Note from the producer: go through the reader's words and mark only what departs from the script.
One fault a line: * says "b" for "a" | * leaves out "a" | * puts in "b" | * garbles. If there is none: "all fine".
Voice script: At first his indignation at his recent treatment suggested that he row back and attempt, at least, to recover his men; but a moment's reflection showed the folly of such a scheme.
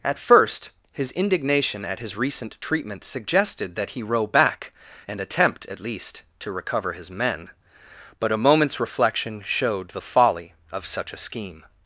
all fine